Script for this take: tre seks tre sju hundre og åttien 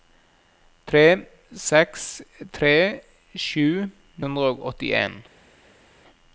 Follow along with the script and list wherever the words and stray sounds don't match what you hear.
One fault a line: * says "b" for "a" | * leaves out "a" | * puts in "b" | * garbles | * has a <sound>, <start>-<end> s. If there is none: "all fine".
all fine